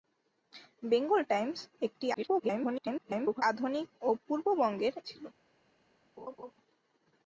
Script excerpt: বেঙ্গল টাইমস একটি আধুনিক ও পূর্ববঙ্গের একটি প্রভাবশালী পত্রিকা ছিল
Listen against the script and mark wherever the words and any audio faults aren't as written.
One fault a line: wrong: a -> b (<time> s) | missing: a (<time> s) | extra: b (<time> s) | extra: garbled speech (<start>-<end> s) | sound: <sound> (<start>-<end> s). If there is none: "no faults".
extra: garbled speech (2.1-3.4 s)
missing: একটি প্রভাবশালী পত্রিকা (4.9 s)
sound: laugh (6.2-6.5 s)